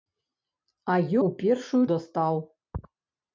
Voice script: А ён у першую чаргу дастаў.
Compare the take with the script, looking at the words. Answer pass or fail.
fail